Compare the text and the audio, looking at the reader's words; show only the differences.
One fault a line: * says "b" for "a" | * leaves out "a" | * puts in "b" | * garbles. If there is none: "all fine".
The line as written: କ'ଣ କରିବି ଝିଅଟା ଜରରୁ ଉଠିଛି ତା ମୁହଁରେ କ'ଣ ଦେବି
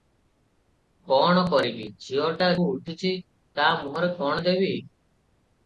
* leaves out "ଜରରୁ"